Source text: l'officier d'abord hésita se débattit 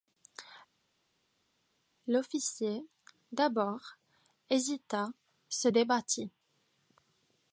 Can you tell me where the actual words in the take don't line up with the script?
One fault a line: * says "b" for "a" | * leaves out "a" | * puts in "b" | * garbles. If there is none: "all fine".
all fine